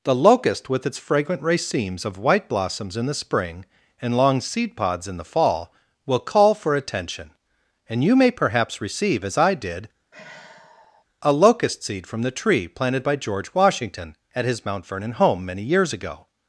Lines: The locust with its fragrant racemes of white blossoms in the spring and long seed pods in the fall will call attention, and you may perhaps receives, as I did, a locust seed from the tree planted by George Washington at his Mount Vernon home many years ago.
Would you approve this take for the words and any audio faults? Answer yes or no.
no